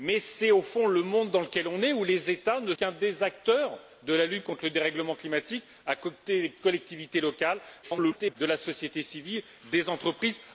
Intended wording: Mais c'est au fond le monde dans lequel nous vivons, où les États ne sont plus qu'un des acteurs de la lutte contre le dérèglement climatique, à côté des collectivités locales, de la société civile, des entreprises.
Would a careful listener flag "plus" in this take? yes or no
yes